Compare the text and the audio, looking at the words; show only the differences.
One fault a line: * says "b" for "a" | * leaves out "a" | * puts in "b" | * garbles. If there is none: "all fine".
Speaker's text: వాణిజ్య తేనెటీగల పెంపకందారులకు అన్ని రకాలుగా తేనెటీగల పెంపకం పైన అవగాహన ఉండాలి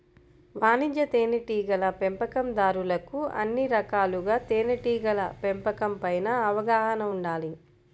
all fine